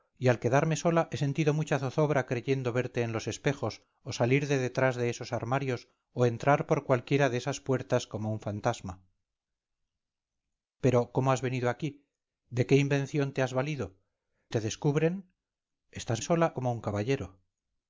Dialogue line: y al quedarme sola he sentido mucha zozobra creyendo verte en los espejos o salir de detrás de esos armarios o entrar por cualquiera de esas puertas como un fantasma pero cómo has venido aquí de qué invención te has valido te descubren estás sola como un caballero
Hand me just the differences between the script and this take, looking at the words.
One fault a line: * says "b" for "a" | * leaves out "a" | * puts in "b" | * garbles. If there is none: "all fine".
all fine